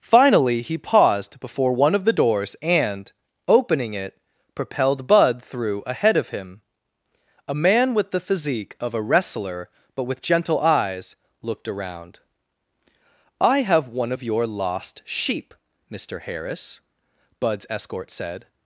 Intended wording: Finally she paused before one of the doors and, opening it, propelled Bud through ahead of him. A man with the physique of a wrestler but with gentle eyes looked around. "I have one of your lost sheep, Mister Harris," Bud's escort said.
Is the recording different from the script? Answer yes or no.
yes